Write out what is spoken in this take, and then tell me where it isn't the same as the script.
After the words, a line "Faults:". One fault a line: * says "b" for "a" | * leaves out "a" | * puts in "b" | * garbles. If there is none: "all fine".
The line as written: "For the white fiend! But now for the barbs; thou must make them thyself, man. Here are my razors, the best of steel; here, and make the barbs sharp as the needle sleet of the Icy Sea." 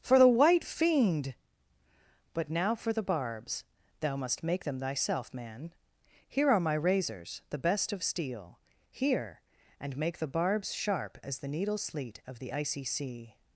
"For the white fiend! But now for the barbs; thou must make them thyself, man. Here are my razors, the best of steel; here, and make the barbs sharp as the needle sleet of the Icy Sea."
Faults:
all fine